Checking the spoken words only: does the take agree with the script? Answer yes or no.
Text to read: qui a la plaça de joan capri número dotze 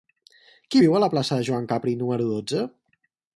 no